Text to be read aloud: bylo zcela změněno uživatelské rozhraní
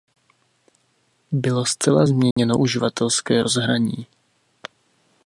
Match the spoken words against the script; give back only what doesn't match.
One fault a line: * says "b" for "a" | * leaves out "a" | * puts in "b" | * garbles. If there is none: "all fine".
all fine